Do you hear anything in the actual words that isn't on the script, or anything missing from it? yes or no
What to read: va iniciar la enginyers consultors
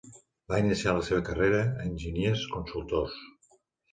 yes